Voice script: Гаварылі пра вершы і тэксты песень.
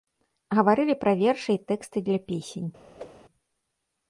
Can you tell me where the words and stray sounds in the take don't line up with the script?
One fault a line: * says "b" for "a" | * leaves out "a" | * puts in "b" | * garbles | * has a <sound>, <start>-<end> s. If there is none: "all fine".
* puts in "для"
* has a whoosh, 3.0-3.2 s